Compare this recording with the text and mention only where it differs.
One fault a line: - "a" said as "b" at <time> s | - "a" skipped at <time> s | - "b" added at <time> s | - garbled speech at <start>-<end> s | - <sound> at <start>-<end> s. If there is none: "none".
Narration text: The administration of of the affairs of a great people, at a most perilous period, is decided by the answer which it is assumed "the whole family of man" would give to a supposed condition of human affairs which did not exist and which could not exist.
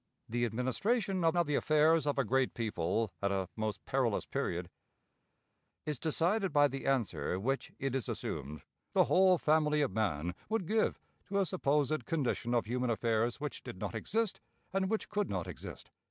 none